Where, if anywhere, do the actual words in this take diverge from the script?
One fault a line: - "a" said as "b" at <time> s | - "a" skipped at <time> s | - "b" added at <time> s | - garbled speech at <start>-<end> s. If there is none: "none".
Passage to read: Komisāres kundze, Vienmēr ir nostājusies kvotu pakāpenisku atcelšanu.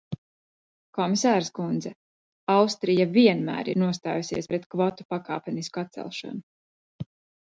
- "Austrija" added at 2.5 s
- "pret" added at 4.5 s